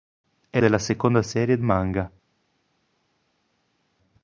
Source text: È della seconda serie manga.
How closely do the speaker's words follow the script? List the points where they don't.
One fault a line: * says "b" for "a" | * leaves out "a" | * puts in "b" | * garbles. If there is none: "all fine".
all fine